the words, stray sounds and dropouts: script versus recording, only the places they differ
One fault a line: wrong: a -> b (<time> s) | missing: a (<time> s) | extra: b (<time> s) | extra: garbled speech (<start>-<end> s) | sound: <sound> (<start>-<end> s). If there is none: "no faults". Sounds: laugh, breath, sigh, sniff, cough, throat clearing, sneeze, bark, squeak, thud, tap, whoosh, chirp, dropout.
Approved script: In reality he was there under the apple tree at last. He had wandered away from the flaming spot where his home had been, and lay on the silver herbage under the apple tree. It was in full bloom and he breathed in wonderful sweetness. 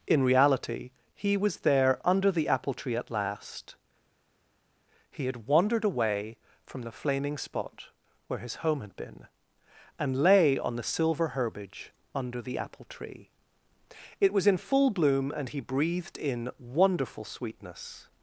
no faults